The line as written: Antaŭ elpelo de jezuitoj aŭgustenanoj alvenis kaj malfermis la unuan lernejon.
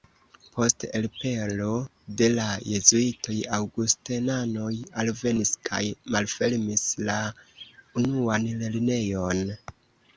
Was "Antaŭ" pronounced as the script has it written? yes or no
no